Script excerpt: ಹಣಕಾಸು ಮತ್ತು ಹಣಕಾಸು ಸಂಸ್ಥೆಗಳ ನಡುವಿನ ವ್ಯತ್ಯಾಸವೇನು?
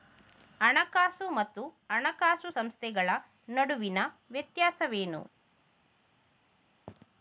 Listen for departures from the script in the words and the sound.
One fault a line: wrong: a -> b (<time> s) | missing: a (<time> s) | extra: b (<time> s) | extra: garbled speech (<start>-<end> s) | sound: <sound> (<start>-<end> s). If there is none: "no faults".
no faults